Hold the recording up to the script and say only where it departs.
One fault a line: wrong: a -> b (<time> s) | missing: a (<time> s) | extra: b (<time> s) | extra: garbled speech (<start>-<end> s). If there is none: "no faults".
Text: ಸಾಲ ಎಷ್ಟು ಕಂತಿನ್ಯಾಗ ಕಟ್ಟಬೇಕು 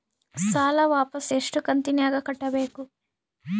extra: ವಾಪಸ್ (0.8 s)